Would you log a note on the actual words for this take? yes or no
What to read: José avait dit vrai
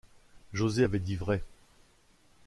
no